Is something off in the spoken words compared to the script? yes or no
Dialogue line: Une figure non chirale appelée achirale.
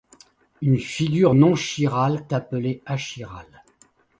no